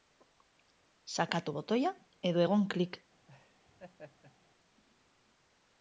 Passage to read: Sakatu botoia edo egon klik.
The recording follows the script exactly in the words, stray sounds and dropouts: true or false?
false